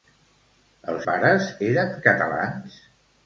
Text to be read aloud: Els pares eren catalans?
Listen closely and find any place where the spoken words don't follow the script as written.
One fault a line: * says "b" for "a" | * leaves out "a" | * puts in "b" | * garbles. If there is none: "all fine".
all fine